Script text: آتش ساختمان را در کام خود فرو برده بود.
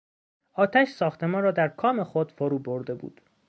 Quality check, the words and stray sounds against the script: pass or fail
pass